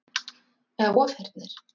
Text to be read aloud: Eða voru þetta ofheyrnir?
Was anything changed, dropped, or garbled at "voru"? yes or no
yes